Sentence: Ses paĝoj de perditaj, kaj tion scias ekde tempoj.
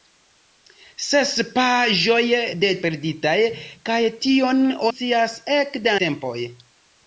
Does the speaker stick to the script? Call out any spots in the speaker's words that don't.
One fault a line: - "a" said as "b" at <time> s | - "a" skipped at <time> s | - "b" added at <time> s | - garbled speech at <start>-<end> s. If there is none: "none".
none